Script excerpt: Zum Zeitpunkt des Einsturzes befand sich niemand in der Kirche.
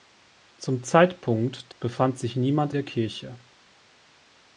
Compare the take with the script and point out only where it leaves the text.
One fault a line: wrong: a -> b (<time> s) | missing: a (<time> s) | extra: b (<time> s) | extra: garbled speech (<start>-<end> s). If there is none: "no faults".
missing: des Einsturzes (1.7 s)
missing: in (2.7 s)